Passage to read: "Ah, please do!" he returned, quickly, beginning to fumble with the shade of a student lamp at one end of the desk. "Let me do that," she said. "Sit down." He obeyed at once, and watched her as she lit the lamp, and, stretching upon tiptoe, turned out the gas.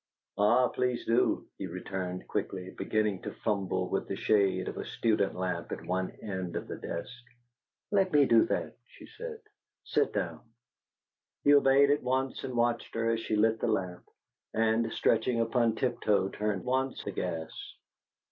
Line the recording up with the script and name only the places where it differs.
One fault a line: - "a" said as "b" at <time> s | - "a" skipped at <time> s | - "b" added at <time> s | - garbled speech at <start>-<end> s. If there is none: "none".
- "out" said as "once" at 16.6 s